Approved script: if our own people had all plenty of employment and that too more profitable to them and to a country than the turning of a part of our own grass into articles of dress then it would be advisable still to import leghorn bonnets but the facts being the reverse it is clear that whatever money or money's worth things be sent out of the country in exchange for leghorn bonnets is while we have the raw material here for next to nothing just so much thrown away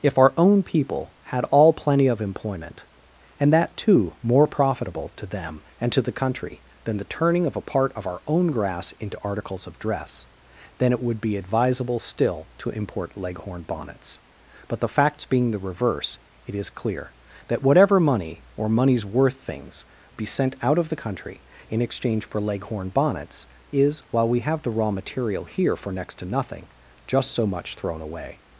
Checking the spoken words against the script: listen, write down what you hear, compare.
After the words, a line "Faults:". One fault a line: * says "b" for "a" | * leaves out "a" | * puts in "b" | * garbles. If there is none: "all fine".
if our own people had all plenty of employment and that too more profitable to them and to the country than the turning of a part of our own grass into articles of dress then it would be advisable still to import leghorn bonnets but the facts being the reverse it is clear that whatever money or money's worth things be sent out of the country in exchange for leghorn bonnets is while we have the raw material here for next to nothing just so much thrown away
Faults:
* says "the" for "a"